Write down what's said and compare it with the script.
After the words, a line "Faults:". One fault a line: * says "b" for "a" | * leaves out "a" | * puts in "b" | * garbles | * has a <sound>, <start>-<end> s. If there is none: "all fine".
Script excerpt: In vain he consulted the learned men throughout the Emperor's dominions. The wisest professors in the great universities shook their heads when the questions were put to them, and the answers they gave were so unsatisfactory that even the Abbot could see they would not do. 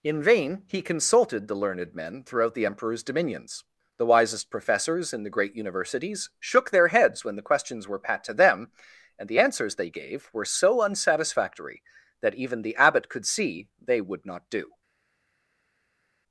In vain he consulted the learned men throughout the Emperor's dominions. The wisest professors in the great universities shook their heads when the questions were pat to them, and the answers they gave were so unsatisfactory that even the Abbot could see they would not do.
Faults:
* says "pat" for "put"